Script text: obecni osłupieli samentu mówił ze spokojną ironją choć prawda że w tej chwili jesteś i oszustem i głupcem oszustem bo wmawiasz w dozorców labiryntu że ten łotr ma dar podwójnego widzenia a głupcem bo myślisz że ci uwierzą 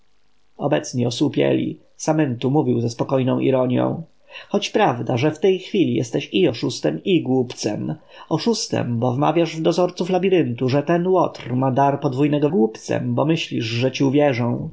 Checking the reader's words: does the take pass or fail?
fail